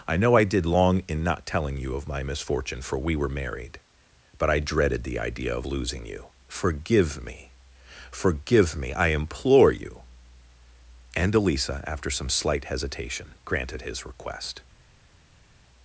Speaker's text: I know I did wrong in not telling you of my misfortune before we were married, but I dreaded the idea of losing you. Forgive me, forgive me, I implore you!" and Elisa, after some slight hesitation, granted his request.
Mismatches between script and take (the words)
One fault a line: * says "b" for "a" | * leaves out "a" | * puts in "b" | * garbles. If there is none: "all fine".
* says "long" for "wrong"
* says "for" for "before"